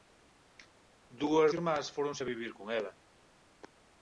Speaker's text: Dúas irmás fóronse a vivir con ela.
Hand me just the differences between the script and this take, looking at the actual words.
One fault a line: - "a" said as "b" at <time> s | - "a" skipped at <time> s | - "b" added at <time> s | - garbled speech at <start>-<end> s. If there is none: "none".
none